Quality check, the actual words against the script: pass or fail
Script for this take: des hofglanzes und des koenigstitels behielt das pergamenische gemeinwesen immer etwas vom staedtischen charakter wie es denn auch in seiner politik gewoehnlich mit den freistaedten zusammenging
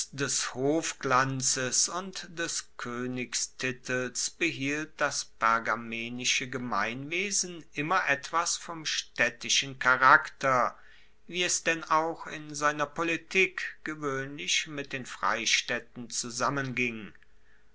pass